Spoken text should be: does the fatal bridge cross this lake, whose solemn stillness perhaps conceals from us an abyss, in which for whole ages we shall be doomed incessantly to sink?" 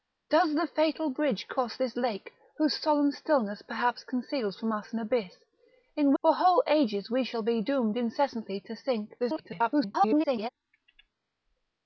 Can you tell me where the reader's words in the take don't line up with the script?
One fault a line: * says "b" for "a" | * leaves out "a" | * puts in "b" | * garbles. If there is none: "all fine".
* leaves out "which"
* garbles